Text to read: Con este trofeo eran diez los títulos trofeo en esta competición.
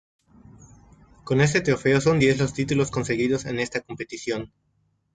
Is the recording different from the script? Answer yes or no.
yes